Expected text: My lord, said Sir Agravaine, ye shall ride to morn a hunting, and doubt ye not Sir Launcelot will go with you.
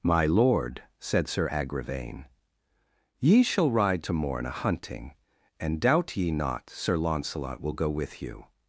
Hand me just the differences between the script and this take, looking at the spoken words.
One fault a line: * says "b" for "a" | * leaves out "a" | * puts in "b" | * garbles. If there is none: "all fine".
all fine